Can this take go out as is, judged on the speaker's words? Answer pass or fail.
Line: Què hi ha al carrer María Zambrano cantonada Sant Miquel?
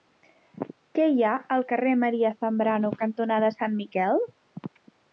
pass